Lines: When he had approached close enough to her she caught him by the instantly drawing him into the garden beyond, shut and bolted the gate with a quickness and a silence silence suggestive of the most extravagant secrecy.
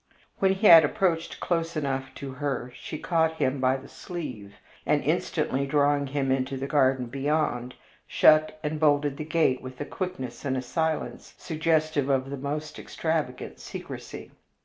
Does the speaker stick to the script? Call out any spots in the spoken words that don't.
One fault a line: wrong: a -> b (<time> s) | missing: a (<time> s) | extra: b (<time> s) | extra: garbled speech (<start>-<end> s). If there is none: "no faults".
extra: sleeve and (3.9 s)
missing: silence (11.3 s)